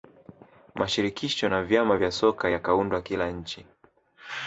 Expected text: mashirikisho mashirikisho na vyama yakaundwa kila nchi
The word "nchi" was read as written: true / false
true